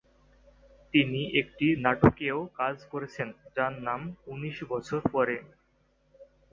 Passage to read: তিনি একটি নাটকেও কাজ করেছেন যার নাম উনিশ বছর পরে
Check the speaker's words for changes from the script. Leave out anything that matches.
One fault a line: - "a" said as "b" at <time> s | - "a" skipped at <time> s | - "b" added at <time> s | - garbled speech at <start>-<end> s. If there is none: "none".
none